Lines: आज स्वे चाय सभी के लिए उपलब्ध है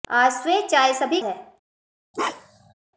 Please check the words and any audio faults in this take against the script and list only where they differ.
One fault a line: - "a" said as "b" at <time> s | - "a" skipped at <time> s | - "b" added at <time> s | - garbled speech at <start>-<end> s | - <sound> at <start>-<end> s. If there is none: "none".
- "के लिए उपलब्ध" skipped at 1.2 s
- bark at 2.1-2.7 s